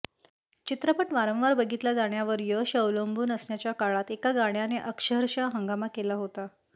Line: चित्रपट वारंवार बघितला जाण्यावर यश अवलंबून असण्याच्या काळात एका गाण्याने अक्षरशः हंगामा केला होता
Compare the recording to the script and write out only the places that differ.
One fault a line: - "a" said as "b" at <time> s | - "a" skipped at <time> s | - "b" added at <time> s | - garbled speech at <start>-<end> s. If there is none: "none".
none